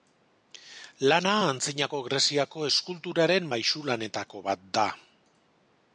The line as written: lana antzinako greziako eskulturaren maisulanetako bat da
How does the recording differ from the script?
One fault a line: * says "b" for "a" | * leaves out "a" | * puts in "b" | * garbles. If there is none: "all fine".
all fine